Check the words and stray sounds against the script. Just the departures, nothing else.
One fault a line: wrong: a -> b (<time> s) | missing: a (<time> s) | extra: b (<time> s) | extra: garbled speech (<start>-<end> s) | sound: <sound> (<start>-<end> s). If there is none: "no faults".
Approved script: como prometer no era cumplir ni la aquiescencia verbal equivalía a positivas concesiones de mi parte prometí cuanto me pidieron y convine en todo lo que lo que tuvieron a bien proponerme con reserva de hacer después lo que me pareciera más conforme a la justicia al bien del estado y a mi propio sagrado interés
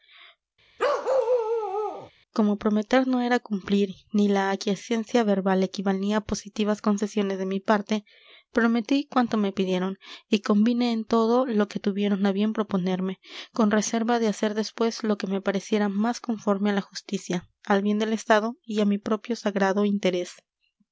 sound: bark (0.8-2.1 s)
missing: lo que (11.8 s)